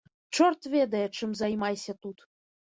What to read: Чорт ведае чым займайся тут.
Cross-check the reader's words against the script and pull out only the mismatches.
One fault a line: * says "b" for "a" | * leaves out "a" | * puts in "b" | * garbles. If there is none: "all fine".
all fine